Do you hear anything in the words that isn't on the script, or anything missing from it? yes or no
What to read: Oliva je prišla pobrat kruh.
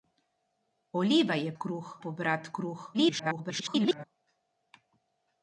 yes